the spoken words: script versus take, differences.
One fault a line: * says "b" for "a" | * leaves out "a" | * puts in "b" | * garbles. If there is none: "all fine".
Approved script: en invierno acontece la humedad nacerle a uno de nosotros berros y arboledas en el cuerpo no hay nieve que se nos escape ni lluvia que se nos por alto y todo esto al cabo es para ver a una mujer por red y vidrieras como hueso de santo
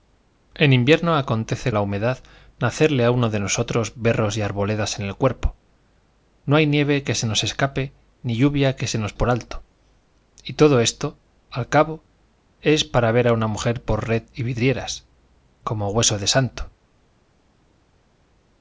all fine